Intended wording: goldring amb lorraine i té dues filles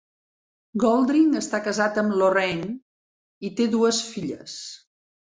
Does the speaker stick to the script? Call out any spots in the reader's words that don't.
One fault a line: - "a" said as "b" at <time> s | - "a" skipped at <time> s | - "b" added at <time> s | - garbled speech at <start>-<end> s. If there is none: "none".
- "està casat" added at 1.4 s